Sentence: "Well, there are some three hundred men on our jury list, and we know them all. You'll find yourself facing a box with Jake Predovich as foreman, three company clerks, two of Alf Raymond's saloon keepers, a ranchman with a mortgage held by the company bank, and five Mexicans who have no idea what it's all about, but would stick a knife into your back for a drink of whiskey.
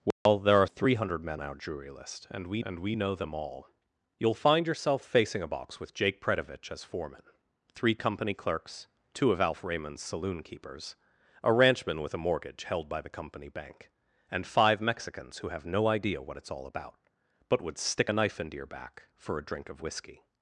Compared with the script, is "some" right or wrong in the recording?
wrong